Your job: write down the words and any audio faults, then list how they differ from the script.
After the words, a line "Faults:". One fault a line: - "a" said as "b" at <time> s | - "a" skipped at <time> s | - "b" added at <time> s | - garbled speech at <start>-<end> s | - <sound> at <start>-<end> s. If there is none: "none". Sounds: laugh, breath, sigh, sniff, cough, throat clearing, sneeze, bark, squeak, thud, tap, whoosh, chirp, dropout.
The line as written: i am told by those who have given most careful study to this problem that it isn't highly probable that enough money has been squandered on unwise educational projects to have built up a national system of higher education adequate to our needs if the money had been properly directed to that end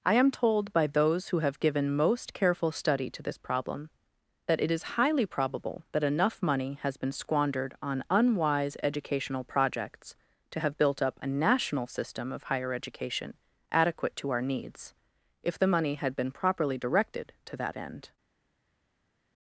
i am told by those who have given most careful study to this problem that it is highly probable that enough money has been squandered on unwise educational projects to have built up a national system of higher education adequate to our needs if the money had been properly directed to that end
Faults:
- "isn't" said as "is" at 4.7 s